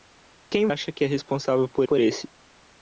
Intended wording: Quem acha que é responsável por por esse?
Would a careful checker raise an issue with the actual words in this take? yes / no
no